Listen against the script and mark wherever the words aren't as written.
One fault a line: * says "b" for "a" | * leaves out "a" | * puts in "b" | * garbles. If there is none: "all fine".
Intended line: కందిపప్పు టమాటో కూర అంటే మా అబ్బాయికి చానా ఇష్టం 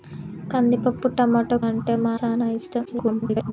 * leaves out "కూర"
* leaves out "అబ్బాయికి"
* garbles